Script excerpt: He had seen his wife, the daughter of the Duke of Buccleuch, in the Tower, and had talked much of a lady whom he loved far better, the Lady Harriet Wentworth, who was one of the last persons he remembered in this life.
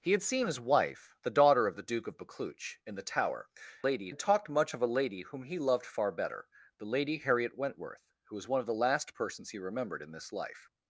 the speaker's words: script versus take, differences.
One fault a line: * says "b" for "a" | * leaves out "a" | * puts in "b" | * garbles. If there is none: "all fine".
* says "lady" for "and"